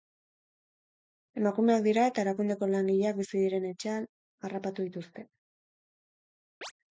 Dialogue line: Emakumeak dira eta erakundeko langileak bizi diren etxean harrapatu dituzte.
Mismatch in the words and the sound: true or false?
true